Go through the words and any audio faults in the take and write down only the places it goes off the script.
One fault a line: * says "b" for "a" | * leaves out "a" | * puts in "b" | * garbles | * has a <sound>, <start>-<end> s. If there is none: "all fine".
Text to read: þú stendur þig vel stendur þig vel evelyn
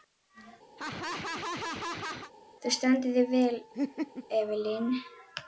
* has a laugh, 0.8-2.3 s
* leaves out "stendur þig vel"
* has a laugh, 3.7-4.3 s